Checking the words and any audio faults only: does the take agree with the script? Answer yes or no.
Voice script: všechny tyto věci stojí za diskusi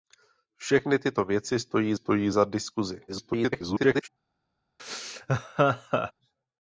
no